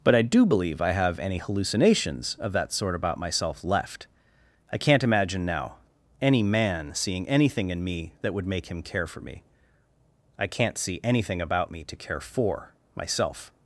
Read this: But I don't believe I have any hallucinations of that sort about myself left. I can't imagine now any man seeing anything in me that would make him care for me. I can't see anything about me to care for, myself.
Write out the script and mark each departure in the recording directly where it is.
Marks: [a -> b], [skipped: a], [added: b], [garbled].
But I [don't -> do] believe I have any hallucinations of that sort about myself left. I can't imagine now any man seeing anything in me that would make him care for me. I can't see anything about me to care for, myself.